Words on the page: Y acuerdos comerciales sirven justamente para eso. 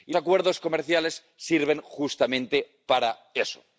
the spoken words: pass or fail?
pass